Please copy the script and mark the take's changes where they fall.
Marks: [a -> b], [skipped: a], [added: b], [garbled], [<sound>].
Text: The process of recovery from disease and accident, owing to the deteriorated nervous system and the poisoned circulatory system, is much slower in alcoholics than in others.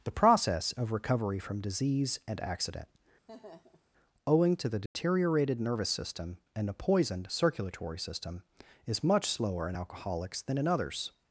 The process of recovery from disease and accident, [laugh] owing to the deteriorated [dropout] nervous system and [the -> a] poisoned circulatory system, is much slower in alcoholics than in others.